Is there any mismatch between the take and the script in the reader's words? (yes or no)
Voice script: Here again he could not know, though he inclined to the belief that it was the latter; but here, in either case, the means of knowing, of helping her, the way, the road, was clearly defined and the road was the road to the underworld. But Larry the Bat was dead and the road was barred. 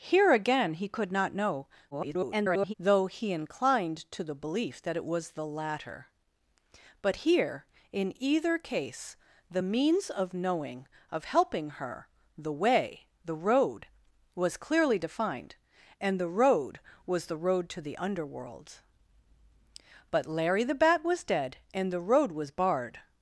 yes